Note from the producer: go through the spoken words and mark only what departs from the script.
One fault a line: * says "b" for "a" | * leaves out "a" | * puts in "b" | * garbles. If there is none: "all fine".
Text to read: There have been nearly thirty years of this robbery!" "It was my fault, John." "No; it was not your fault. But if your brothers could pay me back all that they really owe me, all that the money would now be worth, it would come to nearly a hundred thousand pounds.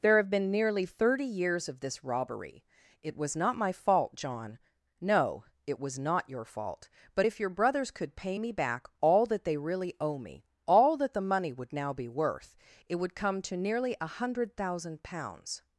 * puts in "not"